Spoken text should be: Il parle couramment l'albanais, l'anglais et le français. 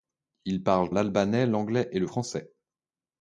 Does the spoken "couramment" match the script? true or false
false